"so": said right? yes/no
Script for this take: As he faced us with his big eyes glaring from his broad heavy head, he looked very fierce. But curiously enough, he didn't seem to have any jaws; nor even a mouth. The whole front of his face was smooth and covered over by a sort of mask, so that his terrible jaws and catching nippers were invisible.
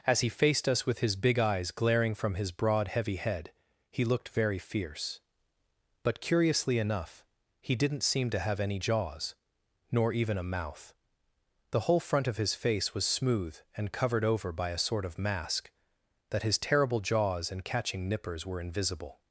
no